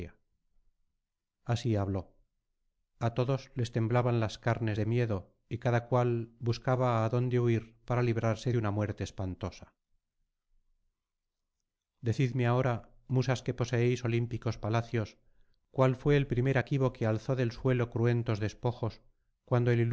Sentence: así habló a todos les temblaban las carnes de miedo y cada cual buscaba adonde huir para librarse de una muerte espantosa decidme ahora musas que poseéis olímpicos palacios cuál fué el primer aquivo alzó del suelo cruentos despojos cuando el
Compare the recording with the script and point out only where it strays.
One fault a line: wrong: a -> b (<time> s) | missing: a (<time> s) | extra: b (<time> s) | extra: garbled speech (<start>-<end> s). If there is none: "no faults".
extra: que (16.9 s)